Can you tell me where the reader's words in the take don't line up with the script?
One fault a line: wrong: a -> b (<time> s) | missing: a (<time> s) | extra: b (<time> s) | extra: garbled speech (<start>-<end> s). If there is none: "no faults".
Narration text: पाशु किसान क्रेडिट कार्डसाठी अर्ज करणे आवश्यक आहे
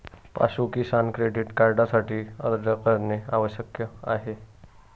no faults